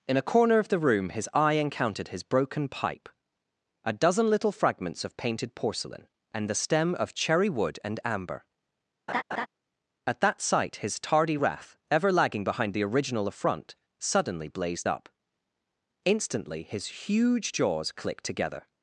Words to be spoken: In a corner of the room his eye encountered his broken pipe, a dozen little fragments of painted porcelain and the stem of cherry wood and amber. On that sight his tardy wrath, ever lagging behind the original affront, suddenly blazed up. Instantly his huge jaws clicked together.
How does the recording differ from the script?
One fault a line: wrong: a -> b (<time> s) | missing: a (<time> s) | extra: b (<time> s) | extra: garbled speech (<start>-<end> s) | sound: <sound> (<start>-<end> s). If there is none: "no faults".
sound: laugh (9.1-9.5 s)
wrong: On -> At (10.1 s)